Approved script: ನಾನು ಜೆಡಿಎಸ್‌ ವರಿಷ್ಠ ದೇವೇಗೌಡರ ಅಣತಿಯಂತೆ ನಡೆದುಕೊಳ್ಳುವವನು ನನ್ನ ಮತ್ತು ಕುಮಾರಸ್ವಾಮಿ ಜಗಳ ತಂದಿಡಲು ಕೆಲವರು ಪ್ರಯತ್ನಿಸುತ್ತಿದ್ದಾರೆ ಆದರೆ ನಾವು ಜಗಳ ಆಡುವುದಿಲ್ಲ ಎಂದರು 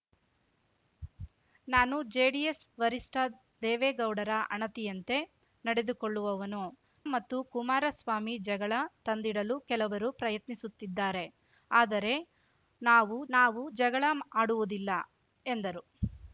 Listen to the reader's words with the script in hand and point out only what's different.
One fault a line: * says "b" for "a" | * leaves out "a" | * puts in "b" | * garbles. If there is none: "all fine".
* leaves out "ನನ್ನ"
* puts in "ನಾವು"